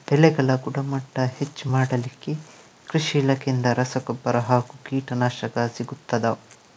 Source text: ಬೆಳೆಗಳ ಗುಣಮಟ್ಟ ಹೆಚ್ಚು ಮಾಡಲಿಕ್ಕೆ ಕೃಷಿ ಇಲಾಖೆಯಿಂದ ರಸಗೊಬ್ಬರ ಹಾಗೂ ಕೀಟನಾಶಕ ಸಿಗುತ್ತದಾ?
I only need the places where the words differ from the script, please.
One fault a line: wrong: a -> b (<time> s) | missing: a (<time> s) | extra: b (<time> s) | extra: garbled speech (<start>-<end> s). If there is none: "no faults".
no faults